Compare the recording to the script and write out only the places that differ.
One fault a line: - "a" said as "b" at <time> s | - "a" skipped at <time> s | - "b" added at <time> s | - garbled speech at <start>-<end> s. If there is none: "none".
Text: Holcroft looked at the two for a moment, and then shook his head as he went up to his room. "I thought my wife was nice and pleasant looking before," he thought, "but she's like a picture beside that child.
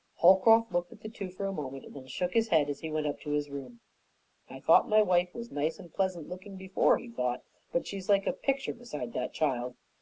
none